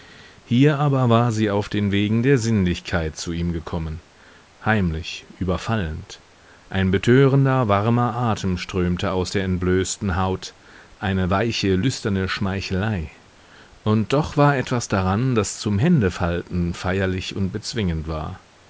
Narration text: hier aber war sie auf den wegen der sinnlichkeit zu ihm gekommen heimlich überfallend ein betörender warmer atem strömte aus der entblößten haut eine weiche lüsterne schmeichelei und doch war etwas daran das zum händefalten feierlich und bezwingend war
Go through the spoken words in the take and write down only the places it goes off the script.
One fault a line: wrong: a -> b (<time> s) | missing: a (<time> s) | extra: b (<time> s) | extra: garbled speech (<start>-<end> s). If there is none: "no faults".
no faults